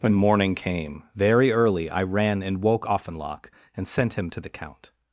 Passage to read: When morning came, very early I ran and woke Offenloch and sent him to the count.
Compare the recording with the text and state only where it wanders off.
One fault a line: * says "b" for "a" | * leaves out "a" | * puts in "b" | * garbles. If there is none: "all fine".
all fine